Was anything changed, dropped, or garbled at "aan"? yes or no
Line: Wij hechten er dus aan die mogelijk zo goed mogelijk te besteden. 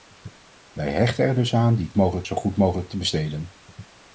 no